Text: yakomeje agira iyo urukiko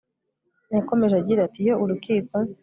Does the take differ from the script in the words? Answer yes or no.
yes